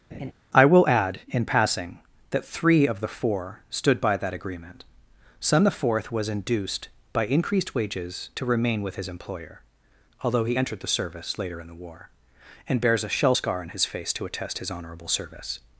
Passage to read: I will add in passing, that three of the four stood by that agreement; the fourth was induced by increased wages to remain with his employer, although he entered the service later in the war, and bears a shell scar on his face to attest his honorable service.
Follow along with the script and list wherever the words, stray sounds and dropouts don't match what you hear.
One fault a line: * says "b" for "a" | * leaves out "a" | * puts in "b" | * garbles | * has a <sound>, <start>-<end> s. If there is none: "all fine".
* has a laugh, 0.1-0.3 s
* puts in "son"